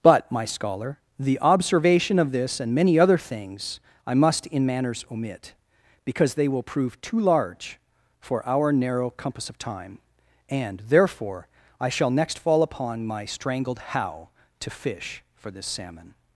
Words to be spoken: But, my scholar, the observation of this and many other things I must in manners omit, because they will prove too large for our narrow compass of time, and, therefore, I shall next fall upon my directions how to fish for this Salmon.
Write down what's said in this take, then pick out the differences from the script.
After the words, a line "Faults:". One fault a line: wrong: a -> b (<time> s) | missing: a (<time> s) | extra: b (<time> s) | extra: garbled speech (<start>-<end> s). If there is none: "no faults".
But, my scholar, the observation of this and many other things I must in manners omit, because they will prove too large for our narrow compass of time, and, therefore, I shall next fall upon my strangled how to fish for this Salmon.
Faults:
wrong: directions -> strangled (13.2 s)